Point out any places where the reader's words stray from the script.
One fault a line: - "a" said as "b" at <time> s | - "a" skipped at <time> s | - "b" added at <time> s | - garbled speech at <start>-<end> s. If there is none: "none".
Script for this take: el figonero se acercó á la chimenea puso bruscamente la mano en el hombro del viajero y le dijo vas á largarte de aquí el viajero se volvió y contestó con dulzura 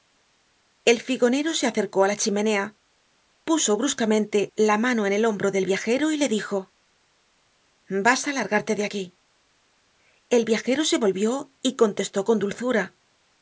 none